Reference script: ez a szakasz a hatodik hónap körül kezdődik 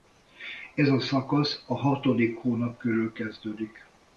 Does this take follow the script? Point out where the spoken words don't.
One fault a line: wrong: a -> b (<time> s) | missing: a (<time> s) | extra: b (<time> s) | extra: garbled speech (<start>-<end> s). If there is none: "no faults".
no faults